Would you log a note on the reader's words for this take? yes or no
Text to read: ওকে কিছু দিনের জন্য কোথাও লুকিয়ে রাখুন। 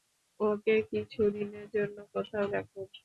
yes